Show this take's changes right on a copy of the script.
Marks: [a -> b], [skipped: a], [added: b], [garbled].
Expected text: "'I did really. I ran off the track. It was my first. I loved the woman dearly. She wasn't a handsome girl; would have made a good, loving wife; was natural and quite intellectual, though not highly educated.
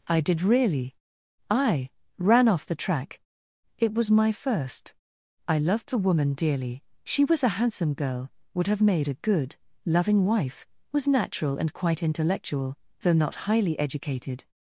"'I did really. I ran off the track. It was my first. I loved the woman dearly. She [wasn't -> was] a handsome girl; would have made a good, loving wife; was natural and quite intellectual, though not highly educated.